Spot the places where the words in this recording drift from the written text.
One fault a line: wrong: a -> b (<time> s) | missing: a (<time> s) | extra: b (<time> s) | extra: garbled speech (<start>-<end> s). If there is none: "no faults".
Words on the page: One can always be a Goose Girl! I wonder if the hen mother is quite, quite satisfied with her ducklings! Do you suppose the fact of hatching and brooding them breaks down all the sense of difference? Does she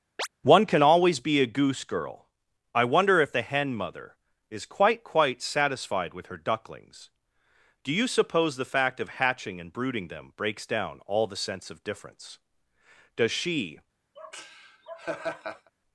no faults